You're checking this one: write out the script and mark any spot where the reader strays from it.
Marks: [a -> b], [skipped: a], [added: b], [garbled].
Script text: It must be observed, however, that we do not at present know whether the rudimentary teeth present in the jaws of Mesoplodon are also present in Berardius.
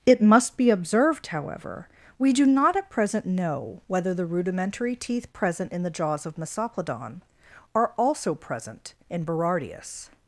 It must be observed, however, [skipped: that] we do not at present know whether the rudimentary teeth present in the jaws of Mesoplodon are also present in Berardius.